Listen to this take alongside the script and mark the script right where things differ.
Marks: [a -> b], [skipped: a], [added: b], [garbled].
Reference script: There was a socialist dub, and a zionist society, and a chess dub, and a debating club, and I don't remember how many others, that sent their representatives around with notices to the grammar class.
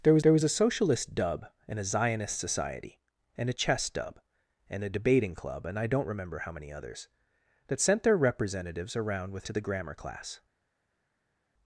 There was [added: there was] a socialist dub, and a zionist society, and a chess dub, and a debating club, and I don't remember how many others, that sent their representatives around with [skipped: notices] to the grammar class.